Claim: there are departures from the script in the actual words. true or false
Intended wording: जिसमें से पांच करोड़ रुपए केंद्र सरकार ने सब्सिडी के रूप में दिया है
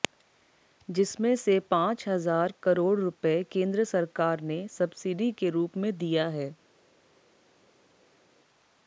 true